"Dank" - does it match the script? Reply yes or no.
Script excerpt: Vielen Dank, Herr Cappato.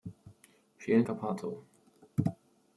no